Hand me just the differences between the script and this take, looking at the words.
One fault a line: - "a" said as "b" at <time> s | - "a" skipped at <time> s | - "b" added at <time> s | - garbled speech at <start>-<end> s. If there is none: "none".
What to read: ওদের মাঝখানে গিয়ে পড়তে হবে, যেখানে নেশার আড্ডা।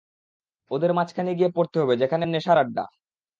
none